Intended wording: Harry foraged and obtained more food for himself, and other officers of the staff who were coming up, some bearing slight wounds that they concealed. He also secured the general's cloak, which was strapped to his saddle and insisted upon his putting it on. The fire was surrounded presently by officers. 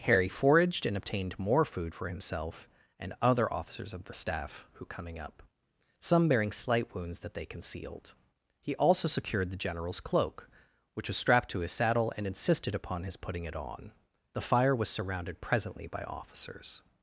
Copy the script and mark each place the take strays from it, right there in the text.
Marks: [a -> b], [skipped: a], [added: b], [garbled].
Harry foraged and obtained more food for himself, and other officers of the staff who [skipped: were] coming up, some bearing slight wounds that they concealed. He also secured the general's cloak, which was strapped to his saddle and insisted upon his putting it on. The fire was surrounded presently by officers.